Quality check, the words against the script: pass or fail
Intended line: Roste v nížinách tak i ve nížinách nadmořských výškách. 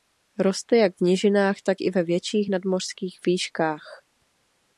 fail